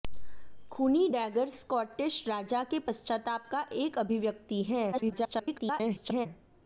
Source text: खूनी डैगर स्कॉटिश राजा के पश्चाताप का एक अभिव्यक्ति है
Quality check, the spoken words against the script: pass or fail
fail